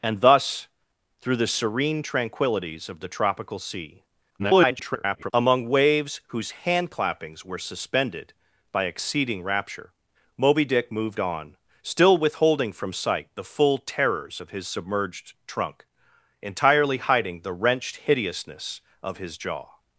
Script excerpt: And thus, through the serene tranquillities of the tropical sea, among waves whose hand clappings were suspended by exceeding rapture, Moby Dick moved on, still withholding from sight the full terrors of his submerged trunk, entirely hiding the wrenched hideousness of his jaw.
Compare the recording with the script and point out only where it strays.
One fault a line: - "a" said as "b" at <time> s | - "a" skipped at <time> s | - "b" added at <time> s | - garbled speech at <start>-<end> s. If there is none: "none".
- garbled speech at 4.4-5.3 s